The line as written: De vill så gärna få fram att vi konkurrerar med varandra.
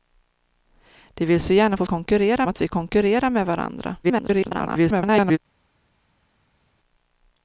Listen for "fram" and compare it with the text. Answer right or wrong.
wrong